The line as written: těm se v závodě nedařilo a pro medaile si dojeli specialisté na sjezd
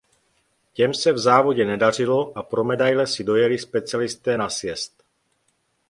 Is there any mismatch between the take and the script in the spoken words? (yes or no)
no